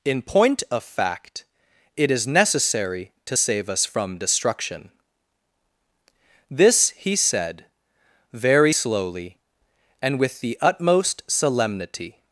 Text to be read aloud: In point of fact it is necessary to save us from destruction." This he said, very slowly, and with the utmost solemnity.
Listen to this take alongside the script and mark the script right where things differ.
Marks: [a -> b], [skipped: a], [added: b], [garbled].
In point of fact it is necessary to save us from destruction." This he said, very slowly, and with the utmost solemnity.